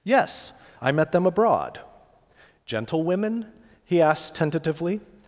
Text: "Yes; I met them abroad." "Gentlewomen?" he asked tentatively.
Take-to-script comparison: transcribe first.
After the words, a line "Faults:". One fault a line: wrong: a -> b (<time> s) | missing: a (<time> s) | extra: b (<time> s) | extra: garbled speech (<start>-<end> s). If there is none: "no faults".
"Yes; I met them abroad." "Gentlewomen?" he asked tentatively.
Faults:
no faults